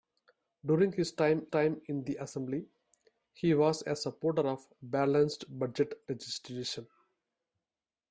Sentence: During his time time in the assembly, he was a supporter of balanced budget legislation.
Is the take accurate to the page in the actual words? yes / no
yes